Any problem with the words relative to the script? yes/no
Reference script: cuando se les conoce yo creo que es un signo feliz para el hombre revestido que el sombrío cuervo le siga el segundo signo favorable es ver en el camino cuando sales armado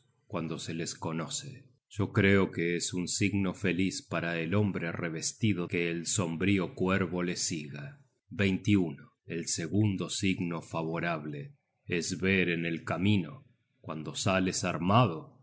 no